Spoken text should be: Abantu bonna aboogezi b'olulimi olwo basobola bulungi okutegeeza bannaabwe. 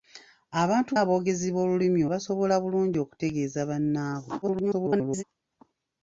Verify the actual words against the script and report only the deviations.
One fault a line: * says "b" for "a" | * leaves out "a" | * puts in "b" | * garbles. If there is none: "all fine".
* leaves out "bonna"
* leaves out "olwo"
* garbles